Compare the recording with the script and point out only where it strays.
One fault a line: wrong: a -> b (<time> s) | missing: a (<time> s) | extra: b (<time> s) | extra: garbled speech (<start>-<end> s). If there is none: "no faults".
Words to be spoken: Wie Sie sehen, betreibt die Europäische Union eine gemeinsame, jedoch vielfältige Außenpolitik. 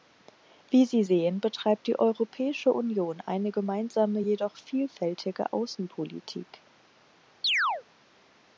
no faults